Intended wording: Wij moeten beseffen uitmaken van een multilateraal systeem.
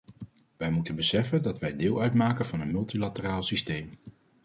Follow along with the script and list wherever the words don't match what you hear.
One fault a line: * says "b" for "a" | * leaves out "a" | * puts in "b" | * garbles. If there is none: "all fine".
* puts in "dat wij deel"